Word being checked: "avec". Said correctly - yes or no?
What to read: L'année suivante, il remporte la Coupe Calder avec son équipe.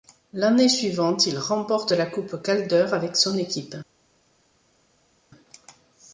yes